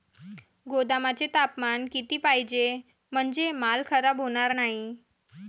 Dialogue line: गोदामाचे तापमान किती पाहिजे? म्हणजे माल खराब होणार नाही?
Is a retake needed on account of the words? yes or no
no